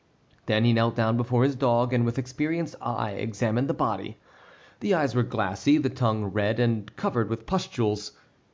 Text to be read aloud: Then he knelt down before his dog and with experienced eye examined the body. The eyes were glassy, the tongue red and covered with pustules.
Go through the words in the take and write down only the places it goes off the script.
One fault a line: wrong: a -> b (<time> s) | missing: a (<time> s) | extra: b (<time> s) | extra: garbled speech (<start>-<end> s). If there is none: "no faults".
no faults